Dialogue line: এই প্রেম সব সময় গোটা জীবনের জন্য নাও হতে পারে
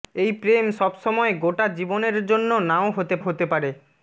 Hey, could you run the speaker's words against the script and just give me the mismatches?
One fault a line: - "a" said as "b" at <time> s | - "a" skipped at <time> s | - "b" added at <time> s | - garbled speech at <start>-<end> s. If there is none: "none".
- "হতে" added at 3.2 s